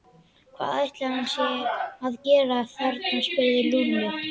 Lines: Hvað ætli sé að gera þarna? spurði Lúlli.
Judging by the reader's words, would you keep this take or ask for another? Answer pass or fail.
fail